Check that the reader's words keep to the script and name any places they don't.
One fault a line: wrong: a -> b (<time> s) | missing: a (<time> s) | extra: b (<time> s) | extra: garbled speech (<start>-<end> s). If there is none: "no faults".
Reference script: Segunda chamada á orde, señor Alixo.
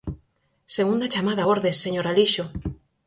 no faults